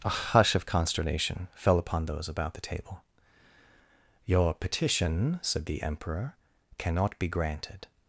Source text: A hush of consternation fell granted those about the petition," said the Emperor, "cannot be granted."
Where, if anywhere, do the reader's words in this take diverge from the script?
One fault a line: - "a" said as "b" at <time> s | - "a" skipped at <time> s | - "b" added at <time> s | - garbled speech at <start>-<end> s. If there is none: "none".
- "granted" said as "upon" at 1.8 s
- "table Your" added at 2.7 s